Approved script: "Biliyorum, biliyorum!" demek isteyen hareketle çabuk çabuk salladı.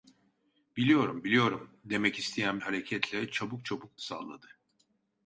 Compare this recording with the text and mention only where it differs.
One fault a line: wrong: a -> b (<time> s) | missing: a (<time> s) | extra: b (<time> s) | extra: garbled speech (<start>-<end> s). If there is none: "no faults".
no faults